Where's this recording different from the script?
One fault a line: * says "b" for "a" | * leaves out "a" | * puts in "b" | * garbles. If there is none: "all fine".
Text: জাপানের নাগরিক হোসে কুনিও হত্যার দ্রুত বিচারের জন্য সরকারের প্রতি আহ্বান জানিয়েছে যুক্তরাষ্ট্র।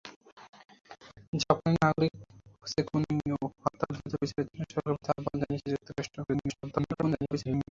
* garbles